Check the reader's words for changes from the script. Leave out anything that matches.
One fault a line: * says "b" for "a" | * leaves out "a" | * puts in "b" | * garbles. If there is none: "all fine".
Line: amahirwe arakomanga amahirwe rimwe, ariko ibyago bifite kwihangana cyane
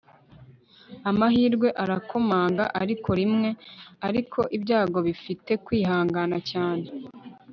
* says "ariko" for "amahirwe"